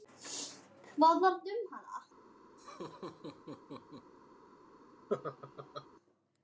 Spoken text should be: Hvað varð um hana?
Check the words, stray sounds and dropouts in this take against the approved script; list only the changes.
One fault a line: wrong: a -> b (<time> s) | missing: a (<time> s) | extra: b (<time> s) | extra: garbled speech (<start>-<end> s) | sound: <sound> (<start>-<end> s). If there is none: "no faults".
sound: laugh (2.6-4.1 s)
sound: laugh (5.1-5.9 s)